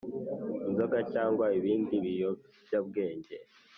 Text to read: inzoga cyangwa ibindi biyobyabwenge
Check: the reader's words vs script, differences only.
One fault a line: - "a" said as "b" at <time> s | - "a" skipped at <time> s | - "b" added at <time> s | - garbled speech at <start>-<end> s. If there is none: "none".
none